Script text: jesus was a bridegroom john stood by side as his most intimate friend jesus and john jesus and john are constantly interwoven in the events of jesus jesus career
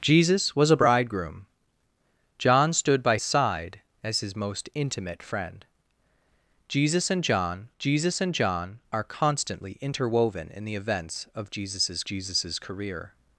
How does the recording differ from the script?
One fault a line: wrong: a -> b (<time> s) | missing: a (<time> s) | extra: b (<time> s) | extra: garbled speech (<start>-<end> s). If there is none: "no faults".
no faults